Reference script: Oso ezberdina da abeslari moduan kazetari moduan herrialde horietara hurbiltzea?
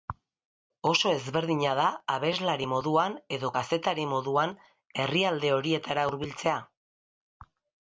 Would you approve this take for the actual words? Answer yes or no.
no